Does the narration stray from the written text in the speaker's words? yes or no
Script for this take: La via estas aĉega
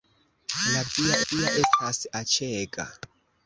yes